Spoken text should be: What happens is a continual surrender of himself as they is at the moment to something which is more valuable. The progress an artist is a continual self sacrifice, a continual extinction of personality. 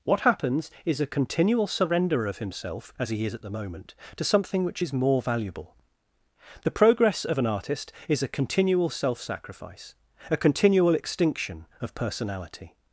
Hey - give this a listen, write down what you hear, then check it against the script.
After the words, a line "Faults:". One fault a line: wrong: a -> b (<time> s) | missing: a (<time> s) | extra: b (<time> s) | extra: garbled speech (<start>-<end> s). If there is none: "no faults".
What happens is a continual surrender of himself as he is at the moment to something which is more valuable. The progress of an artist is a continual self sacrifice, a continual extinction of personality.
Faults:
wrong: they -> he (3.1 s)
extra: of (7.2 s)